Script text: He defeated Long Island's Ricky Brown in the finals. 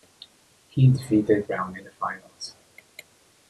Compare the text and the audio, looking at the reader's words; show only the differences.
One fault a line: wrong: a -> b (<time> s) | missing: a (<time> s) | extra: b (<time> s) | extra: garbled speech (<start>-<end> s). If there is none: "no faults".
missing: Long Island's Ricky (1.4 s)